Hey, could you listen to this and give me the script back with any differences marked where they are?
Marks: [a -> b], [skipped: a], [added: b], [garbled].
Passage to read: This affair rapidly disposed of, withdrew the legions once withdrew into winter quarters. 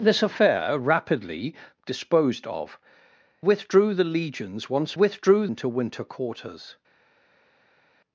This affair rapidly disposed of, withdrew the legions once withdrew into winter quarters.